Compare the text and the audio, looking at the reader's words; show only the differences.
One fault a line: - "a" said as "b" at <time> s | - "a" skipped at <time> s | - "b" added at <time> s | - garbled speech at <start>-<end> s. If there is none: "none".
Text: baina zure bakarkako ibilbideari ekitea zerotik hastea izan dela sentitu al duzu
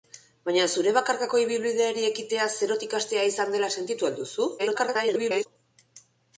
- garbled speech at 4.6-5.5 s